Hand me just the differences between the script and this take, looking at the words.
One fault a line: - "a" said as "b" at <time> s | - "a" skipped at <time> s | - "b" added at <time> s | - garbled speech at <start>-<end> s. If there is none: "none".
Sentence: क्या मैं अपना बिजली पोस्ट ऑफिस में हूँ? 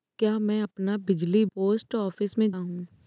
none